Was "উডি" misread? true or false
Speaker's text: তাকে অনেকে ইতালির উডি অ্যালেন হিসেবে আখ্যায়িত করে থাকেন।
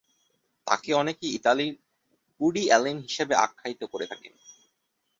false